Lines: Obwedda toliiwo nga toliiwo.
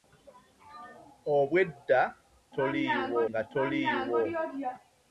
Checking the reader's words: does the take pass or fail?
pass